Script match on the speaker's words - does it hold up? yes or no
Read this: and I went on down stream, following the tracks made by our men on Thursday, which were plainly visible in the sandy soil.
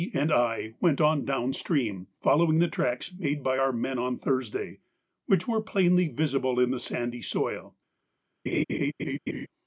yes